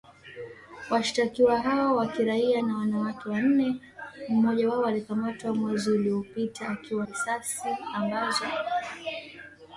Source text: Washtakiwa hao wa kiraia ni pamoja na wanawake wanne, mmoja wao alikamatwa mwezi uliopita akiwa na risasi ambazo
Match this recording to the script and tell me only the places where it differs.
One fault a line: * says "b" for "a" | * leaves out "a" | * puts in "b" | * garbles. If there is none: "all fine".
* leaves out "ni pamoja"
* leaves out "na"